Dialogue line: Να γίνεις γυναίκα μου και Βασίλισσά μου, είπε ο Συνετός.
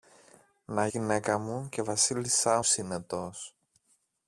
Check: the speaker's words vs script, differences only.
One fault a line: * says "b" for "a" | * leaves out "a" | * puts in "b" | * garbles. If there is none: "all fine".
* leaves out "γίνεις"
* leaves out "μου είπε ο"